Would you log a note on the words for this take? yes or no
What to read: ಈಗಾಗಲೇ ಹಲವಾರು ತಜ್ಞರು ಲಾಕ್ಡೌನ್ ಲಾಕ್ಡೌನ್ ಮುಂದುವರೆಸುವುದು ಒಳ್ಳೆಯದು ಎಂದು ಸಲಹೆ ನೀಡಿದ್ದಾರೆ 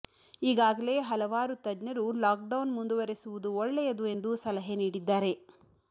yes